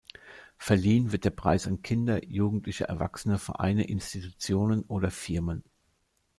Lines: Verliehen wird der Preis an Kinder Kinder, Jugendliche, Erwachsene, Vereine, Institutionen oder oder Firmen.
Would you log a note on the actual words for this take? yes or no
yes